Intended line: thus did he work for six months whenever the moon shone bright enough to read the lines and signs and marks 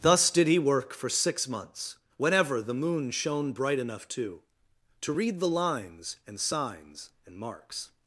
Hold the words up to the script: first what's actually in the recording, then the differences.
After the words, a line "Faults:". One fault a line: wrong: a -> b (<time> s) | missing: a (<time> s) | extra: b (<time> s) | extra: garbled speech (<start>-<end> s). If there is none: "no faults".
thus did he work for six months whenever the moon shone bright enough to to read the lines and signs and marks
Faults:
extra: to (5.0 s)